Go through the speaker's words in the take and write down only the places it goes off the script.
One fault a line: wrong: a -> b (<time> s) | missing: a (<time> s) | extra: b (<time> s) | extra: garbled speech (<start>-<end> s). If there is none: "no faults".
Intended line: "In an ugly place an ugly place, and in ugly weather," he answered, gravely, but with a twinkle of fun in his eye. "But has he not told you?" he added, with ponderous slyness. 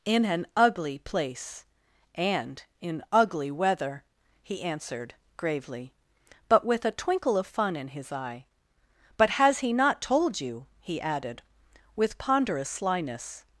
missing: an ugly place (1.6 s)